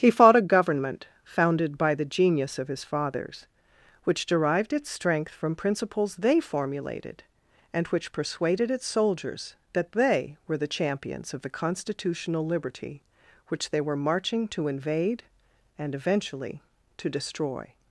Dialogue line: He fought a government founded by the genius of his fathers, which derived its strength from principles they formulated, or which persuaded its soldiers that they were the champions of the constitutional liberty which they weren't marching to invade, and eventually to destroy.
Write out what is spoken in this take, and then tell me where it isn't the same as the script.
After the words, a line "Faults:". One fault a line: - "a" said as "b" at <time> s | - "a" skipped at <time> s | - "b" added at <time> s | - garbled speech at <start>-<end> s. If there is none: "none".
He fought a government founded by the genius of his fathers, which derived its strength from principles they formulated, and which persuaded its soldiers that they were the champions of the constitutional liberty which they were marching to invade, and eventually to destroy.
Faults:
- "or" said as "and" at 7.7 s
- "weren't" said as "were" at 13.8 s